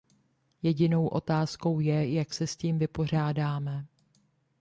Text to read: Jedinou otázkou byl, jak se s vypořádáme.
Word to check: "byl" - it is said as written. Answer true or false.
false